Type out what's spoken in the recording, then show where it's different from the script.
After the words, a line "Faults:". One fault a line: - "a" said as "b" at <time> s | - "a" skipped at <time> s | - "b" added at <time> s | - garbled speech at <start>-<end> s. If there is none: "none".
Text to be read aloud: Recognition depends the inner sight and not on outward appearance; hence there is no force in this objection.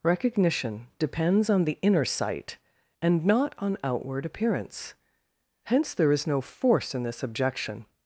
Recognition depends on the inner sight and not on outward appearance; hence there is no force in this objection.
Faults:
- "on" added at 1.5 s